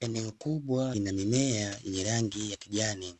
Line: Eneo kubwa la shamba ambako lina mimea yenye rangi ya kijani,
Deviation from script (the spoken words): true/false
true